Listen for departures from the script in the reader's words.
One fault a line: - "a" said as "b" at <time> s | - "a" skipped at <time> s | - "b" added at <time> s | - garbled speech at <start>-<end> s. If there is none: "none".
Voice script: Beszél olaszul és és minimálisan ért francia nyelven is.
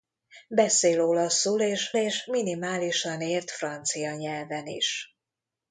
none